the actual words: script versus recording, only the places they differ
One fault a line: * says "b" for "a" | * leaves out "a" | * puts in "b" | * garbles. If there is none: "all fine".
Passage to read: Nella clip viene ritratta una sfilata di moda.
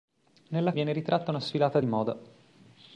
* leaves out "clip"